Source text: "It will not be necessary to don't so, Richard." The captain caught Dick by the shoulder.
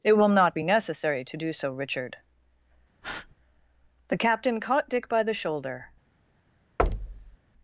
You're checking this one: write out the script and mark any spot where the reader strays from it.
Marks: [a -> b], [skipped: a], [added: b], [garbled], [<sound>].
"It will not be necessary to [don't -> do] so, Richard." [breath] The captain caught Dick by the shoulder. [thud]